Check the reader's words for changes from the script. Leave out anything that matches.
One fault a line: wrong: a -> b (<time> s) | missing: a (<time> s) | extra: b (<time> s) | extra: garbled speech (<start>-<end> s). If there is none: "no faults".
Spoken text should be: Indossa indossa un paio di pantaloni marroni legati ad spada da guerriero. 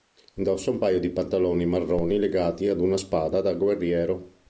missing: indossa (0.7 s)
extra: una (2.8 s)